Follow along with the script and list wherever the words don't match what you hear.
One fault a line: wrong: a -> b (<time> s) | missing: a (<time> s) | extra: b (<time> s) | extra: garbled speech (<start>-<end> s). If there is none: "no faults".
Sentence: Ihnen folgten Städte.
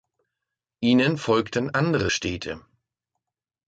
extra: andere (1.7 s)